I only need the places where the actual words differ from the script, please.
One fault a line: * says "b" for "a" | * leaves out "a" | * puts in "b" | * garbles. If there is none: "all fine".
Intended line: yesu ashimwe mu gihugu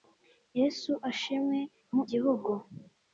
all fine